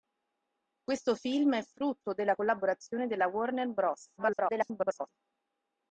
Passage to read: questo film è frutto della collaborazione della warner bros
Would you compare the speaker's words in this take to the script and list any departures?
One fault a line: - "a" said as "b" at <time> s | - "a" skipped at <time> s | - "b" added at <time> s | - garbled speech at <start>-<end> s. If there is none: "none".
- garbled speech at 4.2-5.1 s